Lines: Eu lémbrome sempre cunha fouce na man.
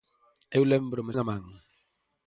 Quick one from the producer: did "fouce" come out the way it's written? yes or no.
no